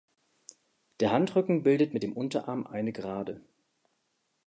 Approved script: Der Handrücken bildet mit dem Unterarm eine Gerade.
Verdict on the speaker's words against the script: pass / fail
pass